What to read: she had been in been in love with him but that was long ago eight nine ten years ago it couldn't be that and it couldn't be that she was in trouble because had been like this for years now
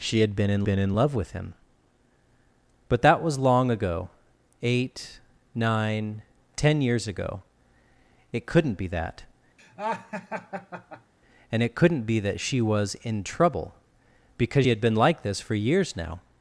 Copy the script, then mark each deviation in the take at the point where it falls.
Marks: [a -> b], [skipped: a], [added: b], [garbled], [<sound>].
she had been in been in love with him but that was long ago eight nine ten years ago it couldn't be that [laugh] and it couldn't be that she was in trouble because had been like this for years now